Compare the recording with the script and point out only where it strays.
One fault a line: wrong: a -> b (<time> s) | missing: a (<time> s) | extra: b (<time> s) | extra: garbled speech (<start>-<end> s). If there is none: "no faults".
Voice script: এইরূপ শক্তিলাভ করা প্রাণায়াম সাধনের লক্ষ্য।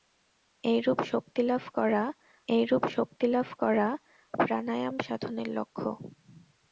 extra: এইরূপ শক্তিলাভ করা (2.5 s)